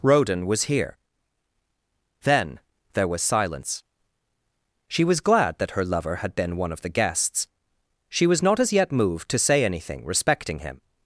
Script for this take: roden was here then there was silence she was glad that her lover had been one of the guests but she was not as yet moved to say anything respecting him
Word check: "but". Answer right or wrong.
wrong